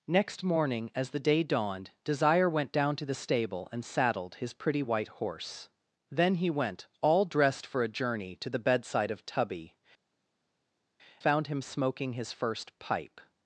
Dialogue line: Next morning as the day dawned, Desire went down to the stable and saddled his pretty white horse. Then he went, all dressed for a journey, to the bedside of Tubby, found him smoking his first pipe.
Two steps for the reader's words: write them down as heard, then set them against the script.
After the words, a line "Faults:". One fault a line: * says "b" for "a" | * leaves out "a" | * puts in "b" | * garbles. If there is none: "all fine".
Next morning as the day dawned, Desire went down to the stable and saddled his pretty white horse. Then he went, all dressed for a journey, to the bedside of Tubby, found him smoking his first pipe.
Faults:
all fine